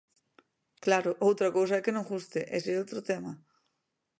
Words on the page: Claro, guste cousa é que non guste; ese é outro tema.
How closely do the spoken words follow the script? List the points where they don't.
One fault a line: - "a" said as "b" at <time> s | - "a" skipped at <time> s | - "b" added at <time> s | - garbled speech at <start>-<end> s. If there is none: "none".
- "guste" said as "outra" at 1.3 s